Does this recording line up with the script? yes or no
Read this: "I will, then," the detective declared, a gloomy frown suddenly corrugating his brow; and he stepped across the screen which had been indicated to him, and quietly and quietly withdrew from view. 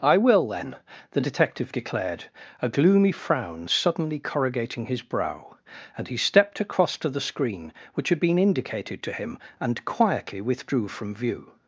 no